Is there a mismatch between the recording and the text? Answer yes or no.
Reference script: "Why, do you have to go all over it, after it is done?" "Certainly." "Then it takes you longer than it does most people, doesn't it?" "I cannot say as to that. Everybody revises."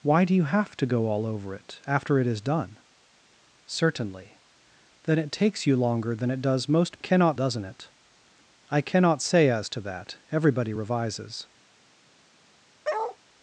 yes